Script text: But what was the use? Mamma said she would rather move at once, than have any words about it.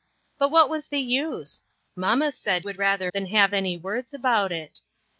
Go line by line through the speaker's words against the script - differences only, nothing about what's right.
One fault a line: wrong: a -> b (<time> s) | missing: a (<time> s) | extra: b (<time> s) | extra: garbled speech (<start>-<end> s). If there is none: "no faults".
missing: she (2.6 s)
missing: move at once (3.1 s)